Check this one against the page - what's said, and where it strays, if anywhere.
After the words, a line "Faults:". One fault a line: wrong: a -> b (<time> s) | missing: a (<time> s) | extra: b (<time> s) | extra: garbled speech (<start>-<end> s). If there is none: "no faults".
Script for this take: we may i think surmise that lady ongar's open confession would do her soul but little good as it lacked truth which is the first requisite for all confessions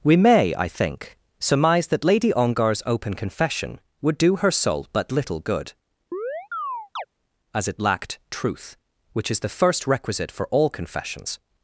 we may i think surmise that lady ongar's open confession would do her soul but little good as it lacked truth which is the first requisite for all confessions
Faults:
no faults